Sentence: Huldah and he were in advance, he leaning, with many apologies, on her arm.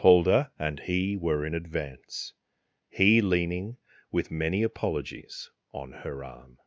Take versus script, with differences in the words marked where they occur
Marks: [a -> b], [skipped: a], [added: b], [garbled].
Huldah and he were in advance, he leaning, with many apologies, on her arm.